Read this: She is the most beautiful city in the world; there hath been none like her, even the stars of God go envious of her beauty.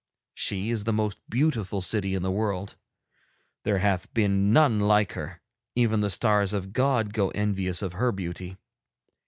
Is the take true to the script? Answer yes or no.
yes